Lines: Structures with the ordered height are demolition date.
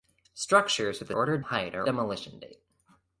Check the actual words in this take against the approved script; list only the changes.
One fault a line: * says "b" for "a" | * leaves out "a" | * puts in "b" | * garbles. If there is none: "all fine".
all fine